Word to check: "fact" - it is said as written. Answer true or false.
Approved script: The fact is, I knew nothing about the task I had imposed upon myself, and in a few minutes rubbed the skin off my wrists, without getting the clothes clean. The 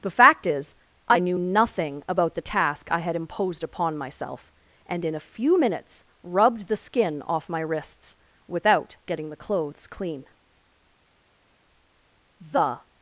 true